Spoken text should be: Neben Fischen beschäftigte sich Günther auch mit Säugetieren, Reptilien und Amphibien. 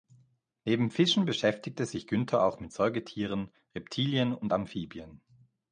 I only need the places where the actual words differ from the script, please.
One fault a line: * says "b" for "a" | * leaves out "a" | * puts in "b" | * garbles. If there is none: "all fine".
all fine